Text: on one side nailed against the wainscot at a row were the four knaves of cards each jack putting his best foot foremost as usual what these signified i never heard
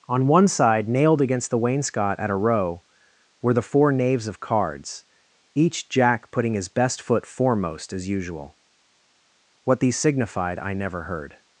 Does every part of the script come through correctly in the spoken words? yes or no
yes